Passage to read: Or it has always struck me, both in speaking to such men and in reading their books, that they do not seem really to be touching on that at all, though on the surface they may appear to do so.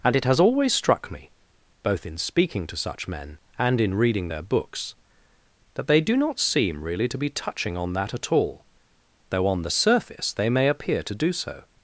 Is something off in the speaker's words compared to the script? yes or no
yes